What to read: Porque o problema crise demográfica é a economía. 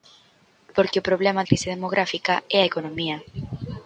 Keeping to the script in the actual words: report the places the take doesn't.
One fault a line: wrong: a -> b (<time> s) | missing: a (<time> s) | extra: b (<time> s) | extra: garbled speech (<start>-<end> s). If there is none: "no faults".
no faults